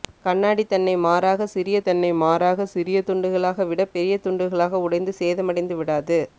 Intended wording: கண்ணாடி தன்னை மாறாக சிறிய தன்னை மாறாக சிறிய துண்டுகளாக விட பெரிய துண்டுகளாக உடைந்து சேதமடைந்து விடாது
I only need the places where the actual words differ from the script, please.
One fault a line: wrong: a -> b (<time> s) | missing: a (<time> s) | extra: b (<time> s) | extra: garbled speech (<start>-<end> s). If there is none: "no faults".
no faults